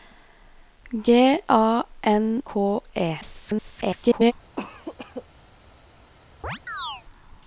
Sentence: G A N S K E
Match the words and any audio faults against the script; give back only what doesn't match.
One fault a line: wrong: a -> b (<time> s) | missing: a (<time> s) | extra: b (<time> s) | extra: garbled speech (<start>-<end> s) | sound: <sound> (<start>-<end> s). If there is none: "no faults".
missing: S (2.4 s)
extra: garbled speech (3.2-4.3 s)
sound: cough (4.6-5.2 s)
sound: chirp (6.4-7.0 s)